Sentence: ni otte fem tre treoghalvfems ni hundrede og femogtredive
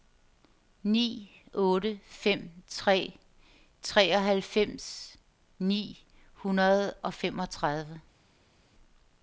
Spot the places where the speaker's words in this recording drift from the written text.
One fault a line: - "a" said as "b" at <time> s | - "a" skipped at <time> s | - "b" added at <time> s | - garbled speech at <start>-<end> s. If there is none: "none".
none